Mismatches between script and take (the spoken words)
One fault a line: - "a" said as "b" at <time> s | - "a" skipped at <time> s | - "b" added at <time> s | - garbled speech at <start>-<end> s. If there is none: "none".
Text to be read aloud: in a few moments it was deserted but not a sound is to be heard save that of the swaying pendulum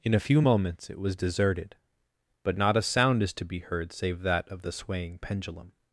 none